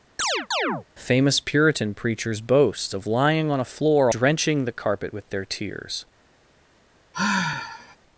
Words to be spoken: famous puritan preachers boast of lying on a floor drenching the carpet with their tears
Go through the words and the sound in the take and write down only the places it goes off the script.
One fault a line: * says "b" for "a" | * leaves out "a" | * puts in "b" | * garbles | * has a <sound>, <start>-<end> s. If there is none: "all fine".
* has a chirp, 0.2-0.9 s
* has a sigh, 7.1-8.0 s